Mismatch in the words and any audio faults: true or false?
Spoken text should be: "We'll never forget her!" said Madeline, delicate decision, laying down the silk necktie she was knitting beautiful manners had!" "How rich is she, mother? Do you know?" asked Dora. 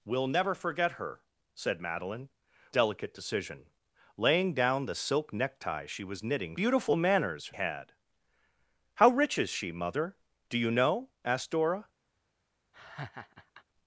true